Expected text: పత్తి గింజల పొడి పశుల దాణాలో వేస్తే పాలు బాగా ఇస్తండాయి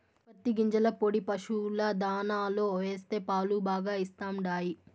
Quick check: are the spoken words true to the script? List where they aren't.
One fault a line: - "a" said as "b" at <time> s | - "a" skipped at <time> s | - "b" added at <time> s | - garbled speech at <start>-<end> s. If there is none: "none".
none